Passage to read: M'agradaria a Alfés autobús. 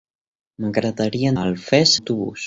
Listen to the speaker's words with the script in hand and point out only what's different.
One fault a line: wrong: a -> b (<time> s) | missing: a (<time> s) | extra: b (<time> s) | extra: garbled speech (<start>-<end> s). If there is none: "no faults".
no faults